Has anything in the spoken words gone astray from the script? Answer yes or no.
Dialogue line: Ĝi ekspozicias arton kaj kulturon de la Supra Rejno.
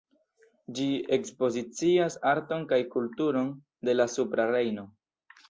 no